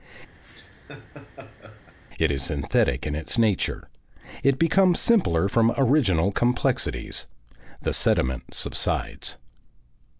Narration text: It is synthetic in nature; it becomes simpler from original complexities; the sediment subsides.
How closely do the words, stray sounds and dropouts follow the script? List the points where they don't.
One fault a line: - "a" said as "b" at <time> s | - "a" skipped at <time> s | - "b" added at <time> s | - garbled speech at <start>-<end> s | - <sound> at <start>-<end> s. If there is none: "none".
- laugh at 0.4-2.0 s
- "its" added at 3.1 s